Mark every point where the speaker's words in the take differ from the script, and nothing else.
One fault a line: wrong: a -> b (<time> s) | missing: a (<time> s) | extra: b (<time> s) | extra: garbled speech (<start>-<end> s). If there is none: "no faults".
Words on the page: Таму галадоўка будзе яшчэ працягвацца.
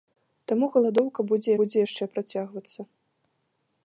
extra: будзе (1.6 s)